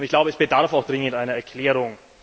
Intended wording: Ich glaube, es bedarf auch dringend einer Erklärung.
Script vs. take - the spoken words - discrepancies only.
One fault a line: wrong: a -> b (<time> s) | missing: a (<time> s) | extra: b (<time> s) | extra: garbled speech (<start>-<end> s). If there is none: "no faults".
no faults